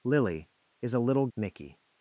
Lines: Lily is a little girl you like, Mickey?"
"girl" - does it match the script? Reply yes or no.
no